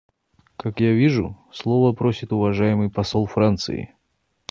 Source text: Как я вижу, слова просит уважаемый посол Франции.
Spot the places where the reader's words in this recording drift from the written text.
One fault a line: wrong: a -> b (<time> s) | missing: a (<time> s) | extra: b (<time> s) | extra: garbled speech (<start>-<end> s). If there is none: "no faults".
no faults